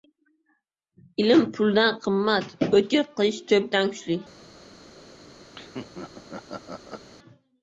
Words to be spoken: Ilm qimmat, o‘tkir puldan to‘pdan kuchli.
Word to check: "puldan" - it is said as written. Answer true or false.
false